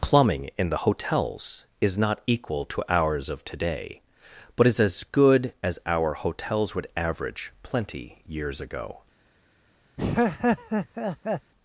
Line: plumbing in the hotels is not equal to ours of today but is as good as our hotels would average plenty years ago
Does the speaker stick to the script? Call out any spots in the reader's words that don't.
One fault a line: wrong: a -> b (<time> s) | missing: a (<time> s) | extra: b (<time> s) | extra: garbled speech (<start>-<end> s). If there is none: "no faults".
no faults